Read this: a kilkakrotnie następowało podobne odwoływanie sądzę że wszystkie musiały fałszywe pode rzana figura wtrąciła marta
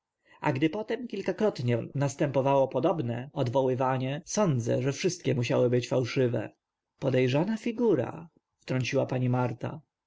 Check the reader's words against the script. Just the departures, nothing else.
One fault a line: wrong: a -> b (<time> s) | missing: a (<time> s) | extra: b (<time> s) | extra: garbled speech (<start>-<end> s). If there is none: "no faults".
extra: gdy potem (0.5 s)
extra: być (5.7 s)
extra: pani (9.1 s)